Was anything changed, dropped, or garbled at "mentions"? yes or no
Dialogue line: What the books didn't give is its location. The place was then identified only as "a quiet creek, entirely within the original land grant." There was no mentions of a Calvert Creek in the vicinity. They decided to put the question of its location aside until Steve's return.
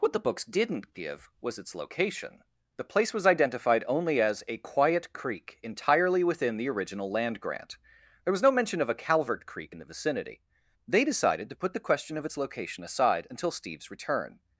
yes